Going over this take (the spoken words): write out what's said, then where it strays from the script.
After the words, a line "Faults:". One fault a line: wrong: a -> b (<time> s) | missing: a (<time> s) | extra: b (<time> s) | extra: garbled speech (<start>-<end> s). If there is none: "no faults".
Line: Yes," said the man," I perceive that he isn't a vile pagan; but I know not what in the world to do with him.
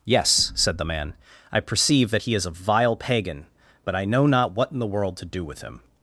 Yes," said the man," I perceive that he is a vile pagan; but I know not what in the world to do with him.
Faults:
wrong: isn't -> is (2.3 s)